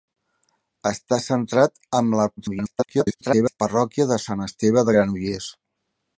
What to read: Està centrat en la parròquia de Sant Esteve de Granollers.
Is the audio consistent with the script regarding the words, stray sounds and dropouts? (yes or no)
no